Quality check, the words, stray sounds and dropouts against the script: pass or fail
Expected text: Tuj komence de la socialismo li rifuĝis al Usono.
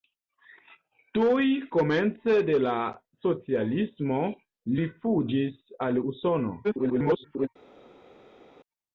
fail